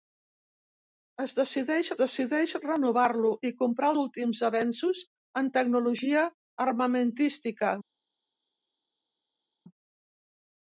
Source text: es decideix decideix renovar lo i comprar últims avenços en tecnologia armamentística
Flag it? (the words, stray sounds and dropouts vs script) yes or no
no